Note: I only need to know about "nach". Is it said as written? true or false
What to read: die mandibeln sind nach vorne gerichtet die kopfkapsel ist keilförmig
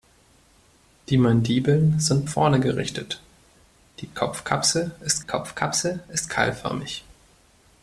false